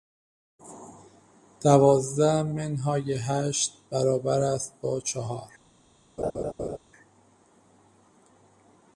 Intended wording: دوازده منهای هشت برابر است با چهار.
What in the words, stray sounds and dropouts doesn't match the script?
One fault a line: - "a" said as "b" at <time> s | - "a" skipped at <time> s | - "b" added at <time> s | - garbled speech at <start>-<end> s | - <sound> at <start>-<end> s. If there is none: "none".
- laugh at 6.2-6.8 s